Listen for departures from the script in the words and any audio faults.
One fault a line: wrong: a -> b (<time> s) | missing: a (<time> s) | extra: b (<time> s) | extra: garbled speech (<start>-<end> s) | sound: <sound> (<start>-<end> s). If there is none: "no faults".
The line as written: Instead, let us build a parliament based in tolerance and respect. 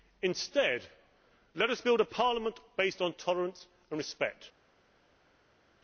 wrong: in -> on (3.0 s)